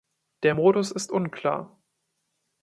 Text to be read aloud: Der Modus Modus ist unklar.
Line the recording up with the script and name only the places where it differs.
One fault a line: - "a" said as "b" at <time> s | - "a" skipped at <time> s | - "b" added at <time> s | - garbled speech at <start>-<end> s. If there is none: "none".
- "Modus" skipped at 0.9 s